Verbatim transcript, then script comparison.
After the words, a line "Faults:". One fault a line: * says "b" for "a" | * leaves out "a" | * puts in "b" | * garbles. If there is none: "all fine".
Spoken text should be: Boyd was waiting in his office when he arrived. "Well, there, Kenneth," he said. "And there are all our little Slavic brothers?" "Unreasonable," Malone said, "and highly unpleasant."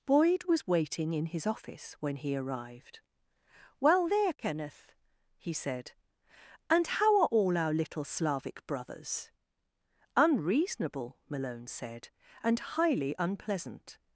Boyd was waiting in his office when he arrived. "Well, there, Kenneth," he said. "And how are all our little Slavic brothers?" "Unreasonable," Malone said, "and highly unpleasant."
Faults:
* says "how" for "there"